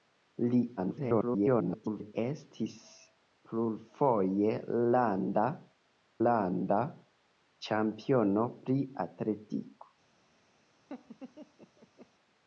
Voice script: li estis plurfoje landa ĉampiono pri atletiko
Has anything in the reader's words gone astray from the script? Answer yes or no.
yes